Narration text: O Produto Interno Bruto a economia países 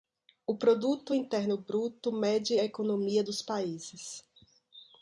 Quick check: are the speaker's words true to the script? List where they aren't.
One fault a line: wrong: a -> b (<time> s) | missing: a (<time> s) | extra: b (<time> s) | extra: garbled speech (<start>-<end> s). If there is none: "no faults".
extra: mede (2.1 s)
extra: dos (3.2 s)